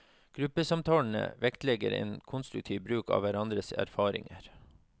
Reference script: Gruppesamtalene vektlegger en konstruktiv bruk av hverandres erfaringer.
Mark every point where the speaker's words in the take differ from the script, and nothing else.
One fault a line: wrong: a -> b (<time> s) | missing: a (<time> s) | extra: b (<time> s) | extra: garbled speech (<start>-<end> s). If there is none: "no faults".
no faults